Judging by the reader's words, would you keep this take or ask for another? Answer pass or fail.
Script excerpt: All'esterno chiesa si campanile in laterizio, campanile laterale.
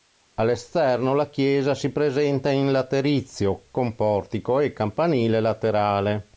fail